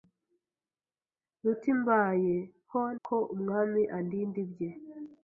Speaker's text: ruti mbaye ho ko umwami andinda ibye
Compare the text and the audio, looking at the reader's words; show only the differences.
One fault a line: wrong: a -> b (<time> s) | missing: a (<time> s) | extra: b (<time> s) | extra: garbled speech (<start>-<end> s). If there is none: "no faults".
no faults